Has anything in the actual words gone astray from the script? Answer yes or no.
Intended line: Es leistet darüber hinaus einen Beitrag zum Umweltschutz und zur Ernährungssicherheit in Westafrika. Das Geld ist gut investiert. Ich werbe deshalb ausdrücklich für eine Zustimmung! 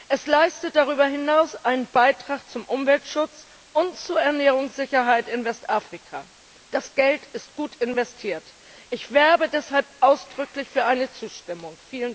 no